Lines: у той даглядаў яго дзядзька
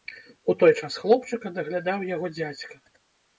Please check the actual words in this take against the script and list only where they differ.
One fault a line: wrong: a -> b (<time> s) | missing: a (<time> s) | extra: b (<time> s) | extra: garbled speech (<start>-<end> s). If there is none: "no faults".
extra: час хлопчыка (0.8 s)